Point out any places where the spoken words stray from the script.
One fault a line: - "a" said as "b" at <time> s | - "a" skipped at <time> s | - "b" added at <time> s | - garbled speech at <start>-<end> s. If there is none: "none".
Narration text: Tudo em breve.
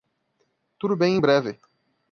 - "bem" added at 0.9 s